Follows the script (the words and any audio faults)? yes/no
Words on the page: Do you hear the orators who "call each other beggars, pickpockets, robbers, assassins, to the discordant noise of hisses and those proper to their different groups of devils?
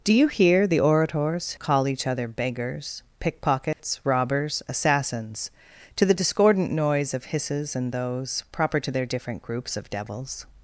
no